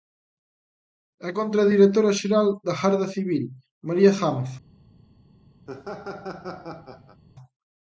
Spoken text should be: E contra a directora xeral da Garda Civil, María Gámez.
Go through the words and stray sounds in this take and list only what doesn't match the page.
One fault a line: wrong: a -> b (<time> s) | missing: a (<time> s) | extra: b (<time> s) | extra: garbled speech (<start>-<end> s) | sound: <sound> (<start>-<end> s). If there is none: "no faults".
sound: laugh (5.7-7.2 s)